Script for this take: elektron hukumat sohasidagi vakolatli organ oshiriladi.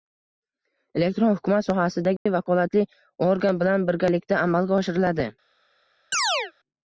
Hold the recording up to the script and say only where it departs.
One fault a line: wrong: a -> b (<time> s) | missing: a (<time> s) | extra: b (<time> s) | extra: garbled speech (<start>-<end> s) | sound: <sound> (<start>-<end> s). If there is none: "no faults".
sound: dropout (2.2-2.3 s)
extra: bilan birgalikda amalga (3.6 s)
sound: chirp (6.1-6.5 s)